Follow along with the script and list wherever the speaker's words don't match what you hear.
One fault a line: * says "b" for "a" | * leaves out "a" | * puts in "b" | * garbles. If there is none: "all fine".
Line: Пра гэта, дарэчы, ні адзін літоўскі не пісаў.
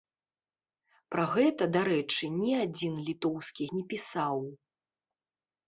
all fine